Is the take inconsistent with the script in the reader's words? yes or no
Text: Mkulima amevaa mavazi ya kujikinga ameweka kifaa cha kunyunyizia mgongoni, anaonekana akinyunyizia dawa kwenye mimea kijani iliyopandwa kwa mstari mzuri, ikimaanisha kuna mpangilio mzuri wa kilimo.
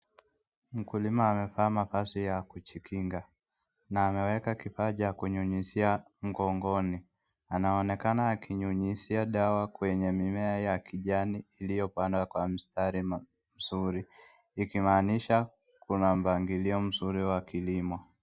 yes